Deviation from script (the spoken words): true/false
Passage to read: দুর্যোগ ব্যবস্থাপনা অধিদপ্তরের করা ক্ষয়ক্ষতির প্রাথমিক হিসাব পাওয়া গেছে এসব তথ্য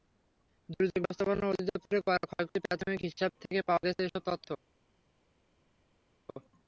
true